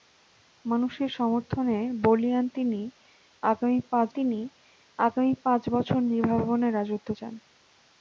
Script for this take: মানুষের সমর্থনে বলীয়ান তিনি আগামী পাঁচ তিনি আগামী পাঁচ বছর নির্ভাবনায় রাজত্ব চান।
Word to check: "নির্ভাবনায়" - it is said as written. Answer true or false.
true